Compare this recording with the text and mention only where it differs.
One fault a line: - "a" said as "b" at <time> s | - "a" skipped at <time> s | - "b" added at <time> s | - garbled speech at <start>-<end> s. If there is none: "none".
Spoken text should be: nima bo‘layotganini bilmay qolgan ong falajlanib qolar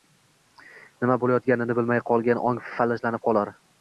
none